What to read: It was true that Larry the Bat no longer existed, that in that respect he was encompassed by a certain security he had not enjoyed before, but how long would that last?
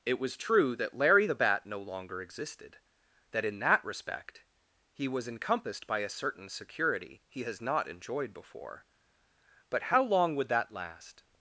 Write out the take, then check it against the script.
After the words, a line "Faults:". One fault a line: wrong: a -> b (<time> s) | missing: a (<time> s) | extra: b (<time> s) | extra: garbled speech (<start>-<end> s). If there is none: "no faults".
It was true that Larry the Bat no longer existed, that in that respect he was encompassed by a certain security he has not enjoyed before, but how long would that last?
Faults:
wrong: had -> has (7.4 s)